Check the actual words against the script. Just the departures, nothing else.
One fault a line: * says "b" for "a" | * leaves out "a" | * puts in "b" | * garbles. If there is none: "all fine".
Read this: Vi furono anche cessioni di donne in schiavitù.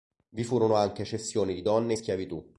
all fine